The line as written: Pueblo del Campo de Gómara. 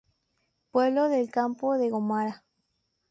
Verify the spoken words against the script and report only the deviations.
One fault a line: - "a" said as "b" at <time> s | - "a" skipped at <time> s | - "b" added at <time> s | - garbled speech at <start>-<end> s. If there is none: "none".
none